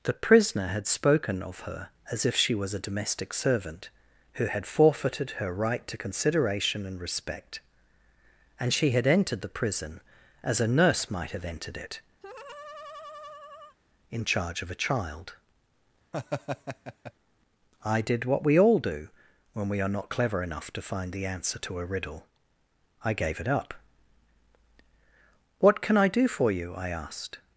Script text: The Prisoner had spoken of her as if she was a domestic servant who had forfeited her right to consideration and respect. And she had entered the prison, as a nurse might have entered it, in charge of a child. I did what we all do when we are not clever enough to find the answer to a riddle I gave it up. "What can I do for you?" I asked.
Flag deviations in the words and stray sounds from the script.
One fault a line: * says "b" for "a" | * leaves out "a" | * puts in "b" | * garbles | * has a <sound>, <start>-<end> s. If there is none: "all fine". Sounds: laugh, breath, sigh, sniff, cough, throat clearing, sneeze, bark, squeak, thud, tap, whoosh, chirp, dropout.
* has a laugh, 12.2-13.8 s
* has a laugh, 16.1-17.1 s